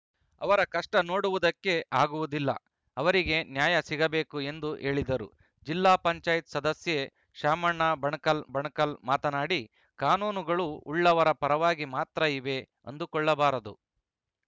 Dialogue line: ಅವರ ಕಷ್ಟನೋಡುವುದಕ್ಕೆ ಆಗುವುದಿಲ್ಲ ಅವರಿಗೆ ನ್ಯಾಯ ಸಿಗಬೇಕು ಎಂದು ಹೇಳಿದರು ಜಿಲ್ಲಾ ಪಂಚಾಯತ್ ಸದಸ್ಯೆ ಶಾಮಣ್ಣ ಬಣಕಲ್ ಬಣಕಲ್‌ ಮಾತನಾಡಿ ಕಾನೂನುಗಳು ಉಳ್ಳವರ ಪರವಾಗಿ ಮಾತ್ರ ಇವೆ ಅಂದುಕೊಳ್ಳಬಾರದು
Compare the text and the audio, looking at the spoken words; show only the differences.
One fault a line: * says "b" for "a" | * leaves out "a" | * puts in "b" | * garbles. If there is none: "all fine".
all fine